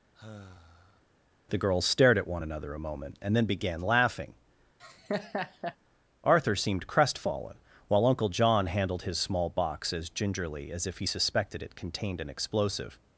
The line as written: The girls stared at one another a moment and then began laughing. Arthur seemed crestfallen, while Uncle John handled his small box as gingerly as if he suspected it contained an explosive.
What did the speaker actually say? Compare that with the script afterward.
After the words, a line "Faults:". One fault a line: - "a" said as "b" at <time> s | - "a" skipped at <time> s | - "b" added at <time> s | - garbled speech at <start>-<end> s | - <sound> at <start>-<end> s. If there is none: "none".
The girls stared at one another a moment and then began laughing. Arthur seemed crestfallen, while Uncle John handled his small box as gingerly as if he suspected it contained an explosive.
Faults:
- sigh at 0.1-1.0 s
- laugh at 4.8-5.8 s